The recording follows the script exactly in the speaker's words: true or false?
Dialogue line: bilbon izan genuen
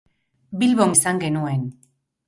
true